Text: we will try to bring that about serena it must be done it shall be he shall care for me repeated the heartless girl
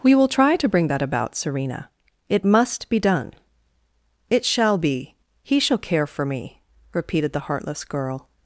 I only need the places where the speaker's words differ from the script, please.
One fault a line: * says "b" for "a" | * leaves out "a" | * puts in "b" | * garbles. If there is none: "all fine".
all fine